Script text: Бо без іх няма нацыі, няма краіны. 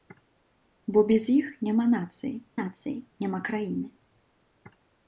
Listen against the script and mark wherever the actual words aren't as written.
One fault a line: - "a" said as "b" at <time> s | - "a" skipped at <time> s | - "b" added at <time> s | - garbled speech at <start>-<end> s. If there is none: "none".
- "нацыі" added at 2.6 s